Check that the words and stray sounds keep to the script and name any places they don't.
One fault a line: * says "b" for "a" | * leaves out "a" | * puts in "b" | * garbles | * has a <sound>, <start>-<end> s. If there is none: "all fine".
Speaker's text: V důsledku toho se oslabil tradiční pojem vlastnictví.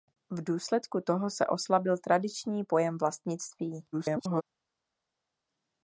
* garbles